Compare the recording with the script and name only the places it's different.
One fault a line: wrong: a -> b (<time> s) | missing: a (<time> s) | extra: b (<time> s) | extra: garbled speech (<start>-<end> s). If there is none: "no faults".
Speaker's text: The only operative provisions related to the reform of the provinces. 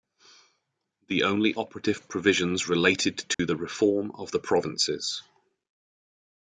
no faults